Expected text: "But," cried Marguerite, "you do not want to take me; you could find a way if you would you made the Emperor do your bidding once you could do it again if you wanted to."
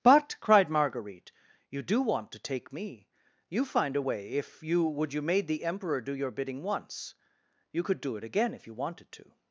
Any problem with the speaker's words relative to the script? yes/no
yes